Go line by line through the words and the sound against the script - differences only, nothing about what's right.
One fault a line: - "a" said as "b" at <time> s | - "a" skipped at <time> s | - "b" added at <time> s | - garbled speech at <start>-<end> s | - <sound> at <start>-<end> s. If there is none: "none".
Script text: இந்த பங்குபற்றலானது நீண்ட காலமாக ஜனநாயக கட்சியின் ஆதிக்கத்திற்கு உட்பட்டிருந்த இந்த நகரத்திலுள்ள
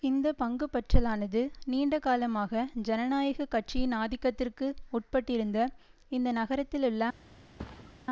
- thud at 7.6-8.0 s